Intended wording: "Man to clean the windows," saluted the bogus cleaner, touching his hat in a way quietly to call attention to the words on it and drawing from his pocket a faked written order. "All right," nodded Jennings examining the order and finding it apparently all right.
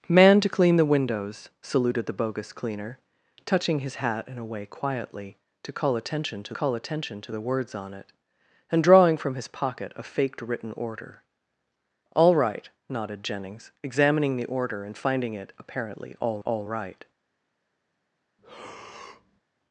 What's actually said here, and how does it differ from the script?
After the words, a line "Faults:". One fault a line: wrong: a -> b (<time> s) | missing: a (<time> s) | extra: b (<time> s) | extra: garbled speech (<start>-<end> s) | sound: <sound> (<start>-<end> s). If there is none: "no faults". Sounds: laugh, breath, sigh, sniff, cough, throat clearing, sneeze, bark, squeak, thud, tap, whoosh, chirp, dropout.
"Man to clean the windows," saluted the bogus cleaner, touching his hat in a way quietly to call attention to call attention to the words on it and drawing from his pocket a faked written order. "All right," nodded Jennings examining the order and finding it apparently all all right.
Faults:
extra: call attention to (6.5 s)
extra: all (16.4 s)
sound: breath (18.4-19.4 s)